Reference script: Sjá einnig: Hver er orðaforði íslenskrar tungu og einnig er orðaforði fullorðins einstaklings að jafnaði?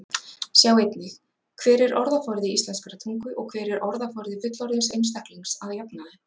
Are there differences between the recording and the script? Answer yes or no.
yes